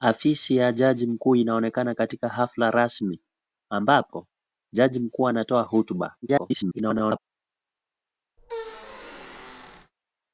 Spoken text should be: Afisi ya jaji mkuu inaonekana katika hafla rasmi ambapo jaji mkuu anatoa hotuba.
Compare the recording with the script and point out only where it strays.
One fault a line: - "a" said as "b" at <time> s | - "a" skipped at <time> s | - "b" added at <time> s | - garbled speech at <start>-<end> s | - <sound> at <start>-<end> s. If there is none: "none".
- garbled speech at 6.2-7.2 s
- squeak at 8.4-9.9 s